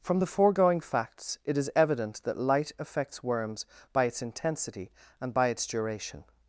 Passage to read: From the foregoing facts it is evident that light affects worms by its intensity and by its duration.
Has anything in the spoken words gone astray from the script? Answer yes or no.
no